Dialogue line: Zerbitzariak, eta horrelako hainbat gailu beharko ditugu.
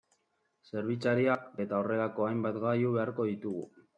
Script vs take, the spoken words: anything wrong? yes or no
no